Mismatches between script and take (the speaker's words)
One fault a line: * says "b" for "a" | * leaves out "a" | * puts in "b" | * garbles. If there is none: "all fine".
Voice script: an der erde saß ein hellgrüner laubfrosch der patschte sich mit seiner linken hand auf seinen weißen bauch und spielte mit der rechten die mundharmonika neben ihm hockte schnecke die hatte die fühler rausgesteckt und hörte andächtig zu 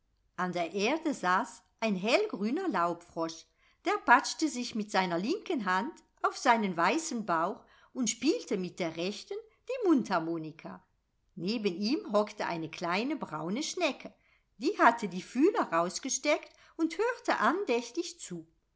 * puts in "eine kleine braune"